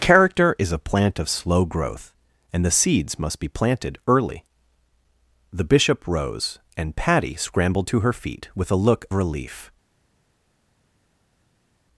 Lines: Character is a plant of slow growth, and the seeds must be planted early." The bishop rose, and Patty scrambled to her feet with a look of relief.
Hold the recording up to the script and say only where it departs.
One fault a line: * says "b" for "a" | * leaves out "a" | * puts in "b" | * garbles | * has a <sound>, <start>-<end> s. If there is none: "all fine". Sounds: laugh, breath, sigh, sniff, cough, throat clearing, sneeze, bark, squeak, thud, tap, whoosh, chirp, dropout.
* leaves out "of"